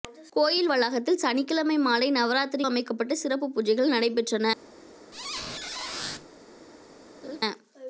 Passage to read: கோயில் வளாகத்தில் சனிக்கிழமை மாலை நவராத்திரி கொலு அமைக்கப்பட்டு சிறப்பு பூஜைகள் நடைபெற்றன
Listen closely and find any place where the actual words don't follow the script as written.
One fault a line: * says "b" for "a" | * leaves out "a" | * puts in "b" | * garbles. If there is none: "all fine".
* leaves out "கொலு"